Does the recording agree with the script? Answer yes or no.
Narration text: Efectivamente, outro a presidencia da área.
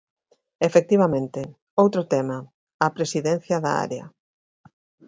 no